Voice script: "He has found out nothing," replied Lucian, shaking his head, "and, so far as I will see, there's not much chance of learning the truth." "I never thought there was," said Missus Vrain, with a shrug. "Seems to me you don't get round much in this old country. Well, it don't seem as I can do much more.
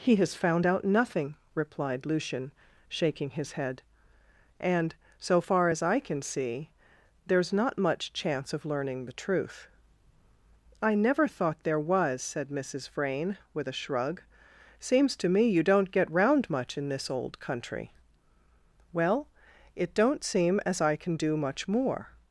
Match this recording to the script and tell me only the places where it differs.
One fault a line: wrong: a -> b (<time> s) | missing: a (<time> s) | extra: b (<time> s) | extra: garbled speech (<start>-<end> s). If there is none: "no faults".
wrong: will -> can (6.0 s)